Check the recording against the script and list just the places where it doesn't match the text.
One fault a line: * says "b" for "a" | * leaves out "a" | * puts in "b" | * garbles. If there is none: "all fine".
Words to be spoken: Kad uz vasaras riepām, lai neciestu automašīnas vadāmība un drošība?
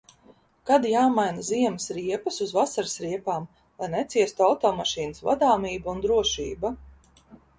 * puts in "jāmaina ziemas riepas"